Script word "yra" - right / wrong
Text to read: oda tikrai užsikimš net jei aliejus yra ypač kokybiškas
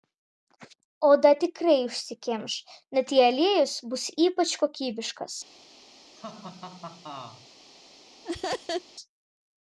wrong